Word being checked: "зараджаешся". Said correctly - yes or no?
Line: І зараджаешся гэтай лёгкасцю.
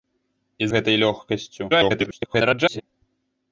no